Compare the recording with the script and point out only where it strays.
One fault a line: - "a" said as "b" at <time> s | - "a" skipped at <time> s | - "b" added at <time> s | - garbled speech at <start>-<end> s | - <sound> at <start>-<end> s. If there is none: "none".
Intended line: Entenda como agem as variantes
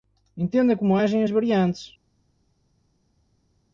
none